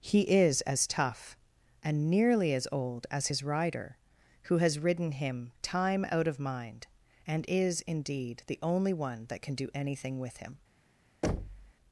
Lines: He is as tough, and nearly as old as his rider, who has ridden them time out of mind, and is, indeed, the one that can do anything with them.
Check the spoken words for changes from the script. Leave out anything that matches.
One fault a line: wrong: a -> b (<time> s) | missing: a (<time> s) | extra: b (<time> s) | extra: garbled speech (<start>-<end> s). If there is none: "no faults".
wrong: them -> him (5.1 s)
extra: only (8.6 s)
wrong: them -> him (10.4 s)